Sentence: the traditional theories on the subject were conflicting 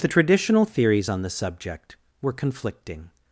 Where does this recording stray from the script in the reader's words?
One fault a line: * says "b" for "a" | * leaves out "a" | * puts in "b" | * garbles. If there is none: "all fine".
all fine